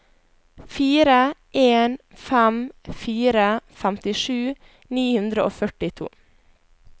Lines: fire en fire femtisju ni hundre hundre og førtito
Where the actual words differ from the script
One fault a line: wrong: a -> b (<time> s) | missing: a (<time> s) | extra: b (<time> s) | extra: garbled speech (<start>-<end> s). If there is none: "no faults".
extra: fem (2.3 s)
missing: hundre (5.5 s)